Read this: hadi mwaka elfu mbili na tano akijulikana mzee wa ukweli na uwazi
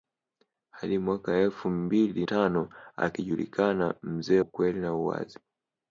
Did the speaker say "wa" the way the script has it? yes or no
no